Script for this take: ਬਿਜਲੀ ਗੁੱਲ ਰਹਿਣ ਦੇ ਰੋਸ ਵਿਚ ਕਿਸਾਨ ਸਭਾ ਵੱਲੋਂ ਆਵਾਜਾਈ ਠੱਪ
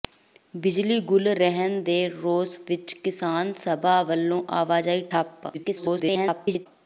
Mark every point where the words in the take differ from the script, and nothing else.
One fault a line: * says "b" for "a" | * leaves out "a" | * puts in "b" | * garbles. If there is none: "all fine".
* garbles